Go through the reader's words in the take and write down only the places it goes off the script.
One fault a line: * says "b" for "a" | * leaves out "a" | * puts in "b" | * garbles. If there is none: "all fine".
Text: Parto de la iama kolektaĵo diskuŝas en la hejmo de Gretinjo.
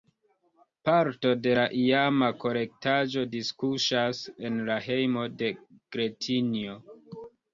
all fine